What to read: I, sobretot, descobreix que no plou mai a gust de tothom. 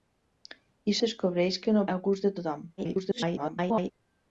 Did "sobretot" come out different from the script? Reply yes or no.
yes